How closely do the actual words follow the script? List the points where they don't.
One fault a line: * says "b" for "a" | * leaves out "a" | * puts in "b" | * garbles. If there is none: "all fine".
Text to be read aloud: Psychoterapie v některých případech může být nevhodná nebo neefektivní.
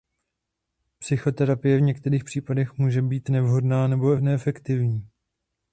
all fine